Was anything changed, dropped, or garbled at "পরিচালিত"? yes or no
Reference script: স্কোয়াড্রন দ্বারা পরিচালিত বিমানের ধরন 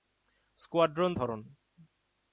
yes